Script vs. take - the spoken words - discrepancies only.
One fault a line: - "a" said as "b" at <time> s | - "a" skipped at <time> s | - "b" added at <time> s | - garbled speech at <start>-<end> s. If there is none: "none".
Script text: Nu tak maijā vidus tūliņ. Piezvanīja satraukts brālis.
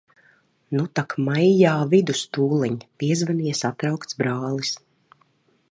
none